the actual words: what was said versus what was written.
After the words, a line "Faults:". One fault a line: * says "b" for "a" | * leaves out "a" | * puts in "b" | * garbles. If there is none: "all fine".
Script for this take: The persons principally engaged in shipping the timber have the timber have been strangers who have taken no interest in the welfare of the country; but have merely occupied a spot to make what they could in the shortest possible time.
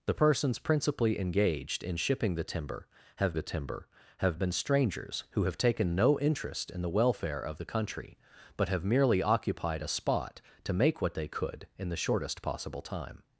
The persons principally engaged in shipping the timber have the timber have been strangers who have taken no interest in the welfare of the country; but have merely occupied a spot to make what they could in the shortest possible time.
Faults:
all fine